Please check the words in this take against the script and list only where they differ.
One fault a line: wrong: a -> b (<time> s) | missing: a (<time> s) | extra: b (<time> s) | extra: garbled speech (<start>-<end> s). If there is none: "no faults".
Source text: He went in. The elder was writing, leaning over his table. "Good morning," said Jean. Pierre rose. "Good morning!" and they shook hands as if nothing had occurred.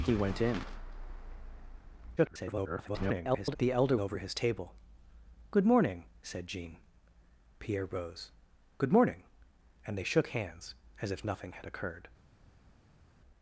extra: garbled speech (2.2-3.6 s)
missing: was writing leaning (4.0 s)